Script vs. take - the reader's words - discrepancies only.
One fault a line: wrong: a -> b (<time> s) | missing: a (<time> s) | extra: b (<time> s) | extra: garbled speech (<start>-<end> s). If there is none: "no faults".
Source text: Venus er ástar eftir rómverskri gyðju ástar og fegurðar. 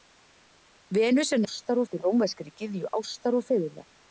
no faults